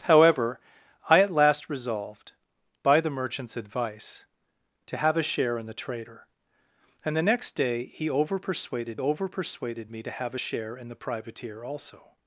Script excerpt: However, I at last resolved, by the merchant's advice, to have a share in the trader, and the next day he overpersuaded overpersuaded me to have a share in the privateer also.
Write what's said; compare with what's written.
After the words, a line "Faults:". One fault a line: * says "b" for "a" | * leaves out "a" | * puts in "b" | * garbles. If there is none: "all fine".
However, I at last resolved, by the merchant's advice, to have a share in the trader, and the next day he overpersuaded overpersuaded me to have a share in the privateer also.
Faults:
all fine